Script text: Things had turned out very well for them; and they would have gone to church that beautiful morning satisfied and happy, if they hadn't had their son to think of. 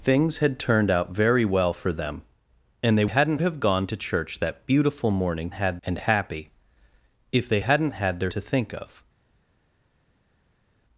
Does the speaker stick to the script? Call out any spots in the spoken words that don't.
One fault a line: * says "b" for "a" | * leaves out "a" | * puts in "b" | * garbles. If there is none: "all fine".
* says "hadn't" for "would"
* says "had" for "satisfied"
* leaves out "son"